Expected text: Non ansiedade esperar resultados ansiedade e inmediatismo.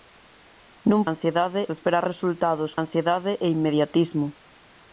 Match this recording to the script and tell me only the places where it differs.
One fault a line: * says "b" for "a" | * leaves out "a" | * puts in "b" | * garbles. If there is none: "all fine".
all fine